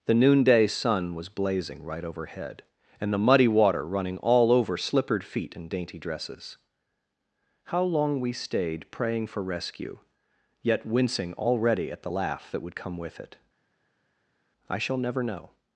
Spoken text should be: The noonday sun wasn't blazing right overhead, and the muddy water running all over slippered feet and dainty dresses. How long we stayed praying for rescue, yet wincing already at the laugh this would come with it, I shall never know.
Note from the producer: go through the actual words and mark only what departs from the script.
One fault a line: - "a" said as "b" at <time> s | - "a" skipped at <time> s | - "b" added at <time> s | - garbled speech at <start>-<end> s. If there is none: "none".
- "wasn't" said as "was" at 1.1 s
- "this" said as "that" at 12.5 s